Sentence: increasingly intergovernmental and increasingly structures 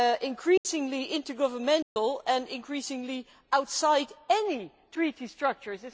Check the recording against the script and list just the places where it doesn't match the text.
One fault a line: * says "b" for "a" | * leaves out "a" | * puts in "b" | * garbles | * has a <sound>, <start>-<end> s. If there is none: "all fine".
* has a dropout, 0.6-0.7 s
* has a dropout, 1.8-2.0 s
* puts in "outside any treaty"